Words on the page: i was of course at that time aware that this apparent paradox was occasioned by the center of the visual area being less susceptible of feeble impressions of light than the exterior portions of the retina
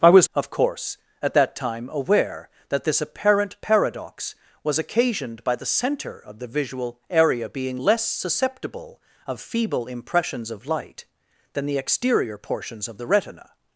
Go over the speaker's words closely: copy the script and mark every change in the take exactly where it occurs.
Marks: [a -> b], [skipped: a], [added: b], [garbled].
i was of course at that time aware that this apparent paradox was occasioned by the center of the visual area being less susceptible of feeble impressions of light than the exterior portions of the retina